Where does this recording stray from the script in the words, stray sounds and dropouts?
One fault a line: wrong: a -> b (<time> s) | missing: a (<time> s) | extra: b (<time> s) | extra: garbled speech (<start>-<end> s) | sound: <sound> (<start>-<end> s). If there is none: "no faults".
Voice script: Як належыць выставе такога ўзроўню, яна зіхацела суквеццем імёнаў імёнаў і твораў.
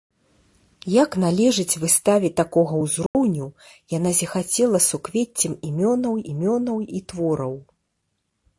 sound: dropout (3.1-3.1 s)